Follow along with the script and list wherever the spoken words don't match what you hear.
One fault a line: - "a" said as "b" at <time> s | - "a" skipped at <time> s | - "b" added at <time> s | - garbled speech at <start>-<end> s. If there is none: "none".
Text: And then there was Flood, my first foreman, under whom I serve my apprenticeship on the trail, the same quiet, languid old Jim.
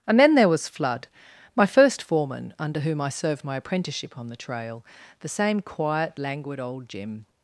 - "serve" said as "served" at 3.1 s